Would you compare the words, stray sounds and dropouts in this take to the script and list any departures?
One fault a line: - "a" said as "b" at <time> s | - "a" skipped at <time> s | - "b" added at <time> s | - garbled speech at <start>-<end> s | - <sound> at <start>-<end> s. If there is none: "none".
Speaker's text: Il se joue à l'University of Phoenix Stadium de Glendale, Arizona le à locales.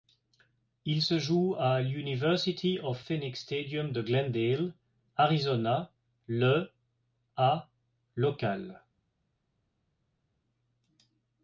none